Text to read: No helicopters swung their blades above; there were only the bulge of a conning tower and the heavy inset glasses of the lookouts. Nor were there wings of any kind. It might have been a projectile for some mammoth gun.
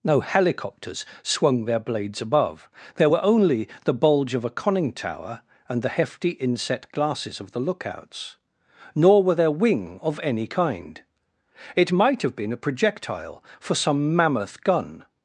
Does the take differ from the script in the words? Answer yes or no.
yes